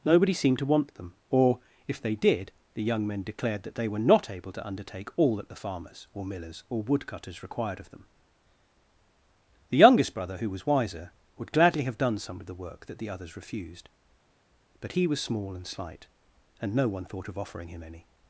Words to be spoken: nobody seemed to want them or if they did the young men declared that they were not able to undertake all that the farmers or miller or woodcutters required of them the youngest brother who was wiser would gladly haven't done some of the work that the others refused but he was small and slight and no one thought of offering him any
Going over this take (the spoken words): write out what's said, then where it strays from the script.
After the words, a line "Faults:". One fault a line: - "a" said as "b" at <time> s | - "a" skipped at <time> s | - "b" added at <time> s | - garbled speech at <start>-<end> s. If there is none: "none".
nobody seemed to want them or if they did the young men declared that they were not able to undertake all that the farmers or millers or woodcutters required of them the youngest brother who was wiser would gladly have done some of the work that the others refused but he was small and slight and no one thought of offering him any
Faults:
- "miller" said as "millers" at 6.2 s
- "haven't" said as "have" at 11.8 s